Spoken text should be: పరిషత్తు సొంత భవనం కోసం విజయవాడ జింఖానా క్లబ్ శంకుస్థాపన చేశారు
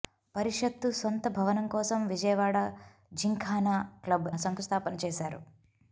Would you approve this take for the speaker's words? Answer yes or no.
yes